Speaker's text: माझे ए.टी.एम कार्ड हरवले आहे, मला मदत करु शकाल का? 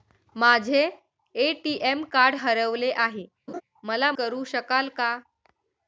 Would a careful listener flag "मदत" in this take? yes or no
yes